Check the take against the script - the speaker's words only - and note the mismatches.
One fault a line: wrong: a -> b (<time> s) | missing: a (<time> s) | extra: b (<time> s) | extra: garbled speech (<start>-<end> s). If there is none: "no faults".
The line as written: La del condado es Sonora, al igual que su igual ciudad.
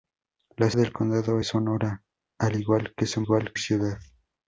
no faults